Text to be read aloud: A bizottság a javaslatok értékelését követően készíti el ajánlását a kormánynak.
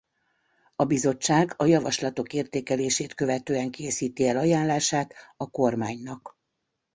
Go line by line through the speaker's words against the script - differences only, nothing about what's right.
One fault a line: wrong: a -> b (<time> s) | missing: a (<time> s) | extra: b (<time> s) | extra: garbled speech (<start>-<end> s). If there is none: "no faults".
no faults